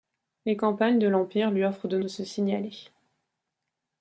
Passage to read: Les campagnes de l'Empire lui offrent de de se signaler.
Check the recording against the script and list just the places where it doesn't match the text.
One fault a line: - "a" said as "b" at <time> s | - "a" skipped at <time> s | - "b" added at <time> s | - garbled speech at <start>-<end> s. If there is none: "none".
none